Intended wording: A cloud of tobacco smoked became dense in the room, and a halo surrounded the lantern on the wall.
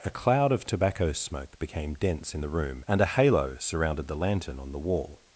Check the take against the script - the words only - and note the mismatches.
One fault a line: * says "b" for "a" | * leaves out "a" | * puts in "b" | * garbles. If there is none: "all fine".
* says "smoke" for "smoked"